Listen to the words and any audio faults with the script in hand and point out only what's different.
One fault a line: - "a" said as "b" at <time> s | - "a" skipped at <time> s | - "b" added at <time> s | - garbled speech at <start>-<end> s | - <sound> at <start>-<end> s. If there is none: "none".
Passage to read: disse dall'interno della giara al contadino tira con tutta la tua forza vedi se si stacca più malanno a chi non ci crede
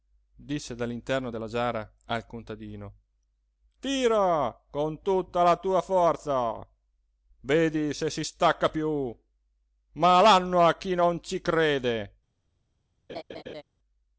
- laugh at 13.1-13.6 s